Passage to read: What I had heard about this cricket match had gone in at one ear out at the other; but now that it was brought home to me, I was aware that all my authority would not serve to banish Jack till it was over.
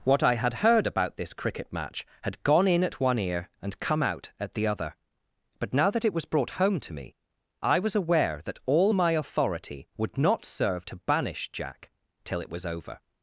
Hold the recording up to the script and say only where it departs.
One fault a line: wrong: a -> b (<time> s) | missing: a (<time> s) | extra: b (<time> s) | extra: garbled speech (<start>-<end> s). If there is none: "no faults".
extra: and come (3.6 s)